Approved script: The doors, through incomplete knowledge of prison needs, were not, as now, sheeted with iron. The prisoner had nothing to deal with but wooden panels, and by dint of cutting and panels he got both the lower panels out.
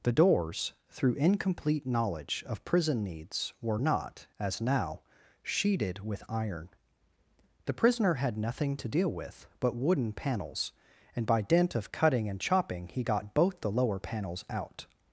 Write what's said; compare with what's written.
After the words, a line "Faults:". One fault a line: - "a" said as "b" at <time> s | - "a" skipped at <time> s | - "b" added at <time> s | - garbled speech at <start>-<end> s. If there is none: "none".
The doors, through incomplete knowledge of prison needs, were not, as now, sheeted with iron. The prisoner had nothing to deal with but wooden panels, and by dint of cutting and chopping he got both the lower panels out.
Faults:
- "panels" said as "chopping" at 12.4 s